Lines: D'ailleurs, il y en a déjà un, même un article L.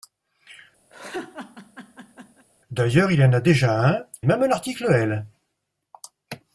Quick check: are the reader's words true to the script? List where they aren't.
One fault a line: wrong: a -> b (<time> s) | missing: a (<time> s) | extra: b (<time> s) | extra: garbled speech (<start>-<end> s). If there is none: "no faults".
no faults